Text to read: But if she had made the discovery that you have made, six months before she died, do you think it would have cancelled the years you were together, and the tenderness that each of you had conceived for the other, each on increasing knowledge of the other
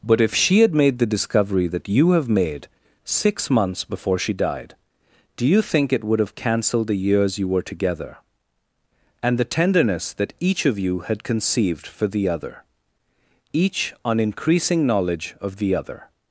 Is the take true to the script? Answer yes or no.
yes